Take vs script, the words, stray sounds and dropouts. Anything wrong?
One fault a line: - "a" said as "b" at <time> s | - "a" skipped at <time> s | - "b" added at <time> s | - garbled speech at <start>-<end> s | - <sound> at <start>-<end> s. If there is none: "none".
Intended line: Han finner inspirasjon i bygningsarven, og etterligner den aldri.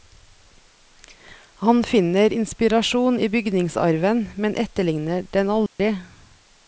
- "og" said as "men" at 4.3 s
- dropout at 5.7-5.8 s